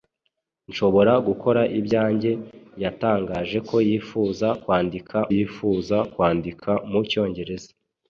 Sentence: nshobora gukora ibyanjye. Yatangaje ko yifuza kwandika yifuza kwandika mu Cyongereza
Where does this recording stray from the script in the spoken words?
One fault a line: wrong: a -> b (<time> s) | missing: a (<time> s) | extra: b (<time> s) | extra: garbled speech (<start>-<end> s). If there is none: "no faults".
no faults